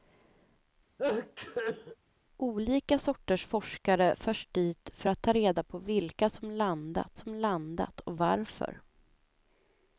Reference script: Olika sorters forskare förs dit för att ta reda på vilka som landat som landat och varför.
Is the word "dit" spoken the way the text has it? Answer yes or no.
yes